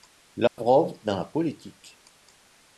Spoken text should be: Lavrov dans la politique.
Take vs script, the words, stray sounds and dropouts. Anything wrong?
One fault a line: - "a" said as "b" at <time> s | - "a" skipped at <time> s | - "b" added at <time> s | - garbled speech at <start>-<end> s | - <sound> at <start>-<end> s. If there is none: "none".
- dropout at 0.5-0.6 s